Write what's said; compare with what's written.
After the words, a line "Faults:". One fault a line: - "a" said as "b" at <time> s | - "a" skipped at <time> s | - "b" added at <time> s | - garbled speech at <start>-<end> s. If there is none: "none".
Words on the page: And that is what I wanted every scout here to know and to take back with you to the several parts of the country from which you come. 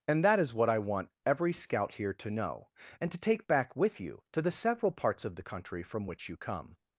And that is what I want every scout here to know and to take back with you to the several parts of the country from which you come.
Faults:
- "wanted" said as "want" at 0.8 s